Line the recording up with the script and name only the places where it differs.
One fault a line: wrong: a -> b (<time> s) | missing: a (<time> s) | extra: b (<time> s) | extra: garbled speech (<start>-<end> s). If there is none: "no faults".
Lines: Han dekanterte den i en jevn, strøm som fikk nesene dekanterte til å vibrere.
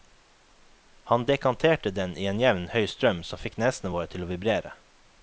extra: høy (2.7 s)
wrong: dekanterte -> våre (3.9 s)